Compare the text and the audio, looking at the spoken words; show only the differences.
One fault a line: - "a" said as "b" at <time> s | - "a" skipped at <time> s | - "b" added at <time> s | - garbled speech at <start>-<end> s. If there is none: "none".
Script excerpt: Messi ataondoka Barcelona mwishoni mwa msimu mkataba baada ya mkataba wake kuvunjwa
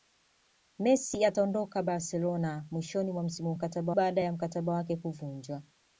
none